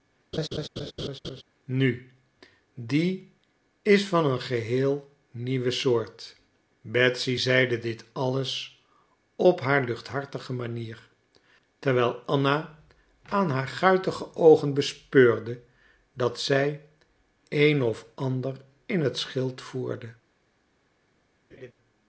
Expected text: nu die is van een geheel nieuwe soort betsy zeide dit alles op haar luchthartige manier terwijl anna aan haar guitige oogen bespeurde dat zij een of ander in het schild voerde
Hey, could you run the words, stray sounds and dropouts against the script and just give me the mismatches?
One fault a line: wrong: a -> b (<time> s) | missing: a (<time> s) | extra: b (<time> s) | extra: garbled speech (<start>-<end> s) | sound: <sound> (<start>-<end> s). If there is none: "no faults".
sound: laugh (0.3-1.4 s)
sound: laugh (21.5-21.7 s)